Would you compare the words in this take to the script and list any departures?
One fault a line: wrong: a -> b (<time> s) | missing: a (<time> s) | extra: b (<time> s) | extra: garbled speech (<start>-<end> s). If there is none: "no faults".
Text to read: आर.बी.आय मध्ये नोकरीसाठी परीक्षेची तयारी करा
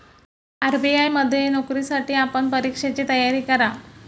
extra: आपण (2.1 s)